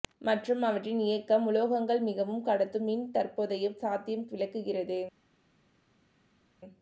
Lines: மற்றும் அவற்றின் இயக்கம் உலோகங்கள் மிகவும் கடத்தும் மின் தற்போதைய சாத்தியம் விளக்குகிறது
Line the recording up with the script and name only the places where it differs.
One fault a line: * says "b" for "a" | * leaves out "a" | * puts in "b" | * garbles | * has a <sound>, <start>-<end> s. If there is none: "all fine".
all fine